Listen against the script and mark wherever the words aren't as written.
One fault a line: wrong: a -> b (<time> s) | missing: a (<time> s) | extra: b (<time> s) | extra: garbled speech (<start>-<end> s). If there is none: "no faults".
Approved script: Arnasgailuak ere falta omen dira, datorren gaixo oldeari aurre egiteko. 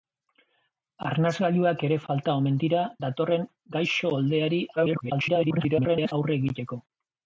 extra: garbled speech (4.8-6.1 s)